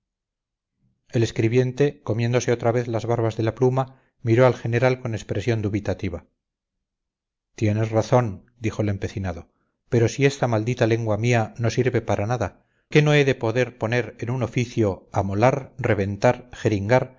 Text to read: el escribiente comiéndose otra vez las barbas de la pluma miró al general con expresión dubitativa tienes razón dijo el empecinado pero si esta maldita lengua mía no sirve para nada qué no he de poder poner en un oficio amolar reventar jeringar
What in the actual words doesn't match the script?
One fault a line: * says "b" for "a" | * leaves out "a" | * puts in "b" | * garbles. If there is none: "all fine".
all fine